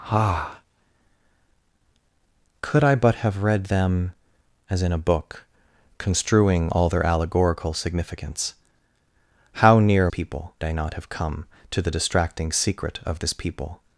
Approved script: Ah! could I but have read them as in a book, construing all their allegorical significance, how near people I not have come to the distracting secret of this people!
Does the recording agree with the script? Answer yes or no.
yes